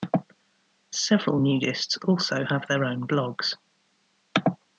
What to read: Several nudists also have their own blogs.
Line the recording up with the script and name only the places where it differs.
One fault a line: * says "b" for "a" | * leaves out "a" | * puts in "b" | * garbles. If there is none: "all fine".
all fine